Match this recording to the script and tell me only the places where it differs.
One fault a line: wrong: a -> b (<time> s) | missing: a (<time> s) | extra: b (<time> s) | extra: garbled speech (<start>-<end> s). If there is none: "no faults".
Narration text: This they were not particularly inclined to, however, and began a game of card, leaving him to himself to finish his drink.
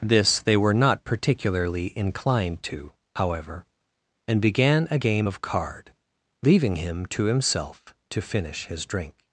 no faults